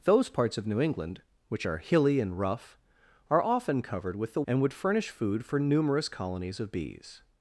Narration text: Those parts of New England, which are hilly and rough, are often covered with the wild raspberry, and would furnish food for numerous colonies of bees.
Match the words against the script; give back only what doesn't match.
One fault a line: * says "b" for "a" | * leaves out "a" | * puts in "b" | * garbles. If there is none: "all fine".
* leaves out "wild raspberry"